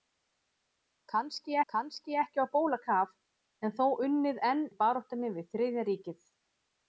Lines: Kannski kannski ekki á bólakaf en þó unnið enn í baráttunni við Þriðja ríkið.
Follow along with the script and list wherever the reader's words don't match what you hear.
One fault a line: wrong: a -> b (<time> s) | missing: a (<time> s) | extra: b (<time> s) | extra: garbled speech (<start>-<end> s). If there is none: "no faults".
no faults